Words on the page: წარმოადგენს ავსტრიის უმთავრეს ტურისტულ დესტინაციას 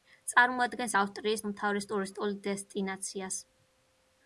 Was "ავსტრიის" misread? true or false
false